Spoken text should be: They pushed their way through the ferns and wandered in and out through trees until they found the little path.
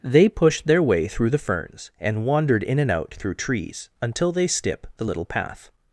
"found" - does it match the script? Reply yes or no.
no